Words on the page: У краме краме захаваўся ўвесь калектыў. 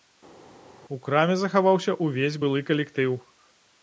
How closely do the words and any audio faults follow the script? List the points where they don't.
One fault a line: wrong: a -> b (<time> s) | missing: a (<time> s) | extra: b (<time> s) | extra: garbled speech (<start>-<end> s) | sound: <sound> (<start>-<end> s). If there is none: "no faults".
missing: краме (1.3 s)
extra: былы (2.4 s)